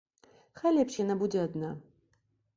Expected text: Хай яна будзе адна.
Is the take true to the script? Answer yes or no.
no